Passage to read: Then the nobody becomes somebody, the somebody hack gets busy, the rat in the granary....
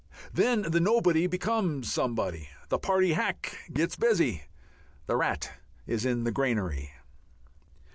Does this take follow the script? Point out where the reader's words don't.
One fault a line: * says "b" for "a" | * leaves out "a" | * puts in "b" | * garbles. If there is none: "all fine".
* says "party" for "somebody"
* puts in "is"